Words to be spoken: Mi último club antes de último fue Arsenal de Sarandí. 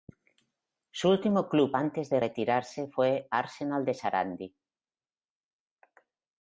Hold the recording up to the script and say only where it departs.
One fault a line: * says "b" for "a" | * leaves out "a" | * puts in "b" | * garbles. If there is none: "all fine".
* says "Su" for "Mi"
* says "retirarse" for "último"